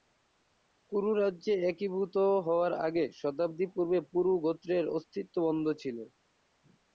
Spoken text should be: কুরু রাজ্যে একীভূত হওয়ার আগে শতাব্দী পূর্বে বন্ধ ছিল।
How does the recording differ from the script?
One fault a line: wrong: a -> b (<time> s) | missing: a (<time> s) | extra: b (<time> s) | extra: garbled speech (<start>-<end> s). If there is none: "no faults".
extra: পুরু গোত্রের অস্তিত্ব (4.1 s)